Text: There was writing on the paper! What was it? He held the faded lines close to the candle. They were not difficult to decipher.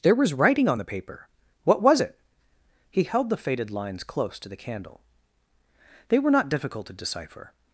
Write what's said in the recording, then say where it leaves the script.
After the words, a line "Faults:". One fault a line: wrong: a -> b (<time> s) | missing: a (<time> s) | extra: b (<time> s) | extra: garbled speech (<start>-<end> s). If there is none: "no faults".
There was writing on the paper! What was it? He held the faded lines close to the candle. They were not difficult to decipher.
Faults:
no faults